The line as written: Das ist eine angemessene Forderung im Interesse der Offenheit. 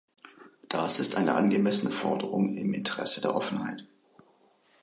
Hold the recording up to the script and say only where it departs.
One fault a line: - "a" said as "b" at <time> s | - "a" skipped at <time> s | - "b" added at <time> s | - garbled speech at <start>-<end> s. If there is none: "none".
none